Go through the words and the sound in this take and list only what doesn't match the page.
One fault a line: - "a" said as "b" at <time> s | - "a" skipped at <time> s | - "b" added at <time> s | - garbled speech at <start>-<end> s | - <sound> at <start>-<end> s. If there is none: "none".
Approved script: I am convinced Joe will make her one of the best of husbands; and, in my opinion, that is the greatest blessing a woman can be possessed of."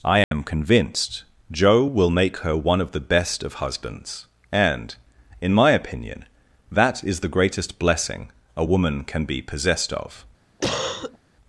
- dropout at 0.2-0.3 s
- cough at 10.6-11.2 s